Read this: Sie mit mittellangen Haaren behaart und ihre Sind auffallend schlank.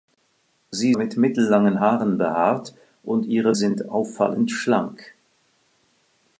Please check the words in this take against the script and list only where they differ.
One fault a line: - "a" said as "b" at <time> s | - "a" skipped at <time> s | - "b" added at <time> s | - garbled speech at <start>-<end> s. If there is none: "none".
none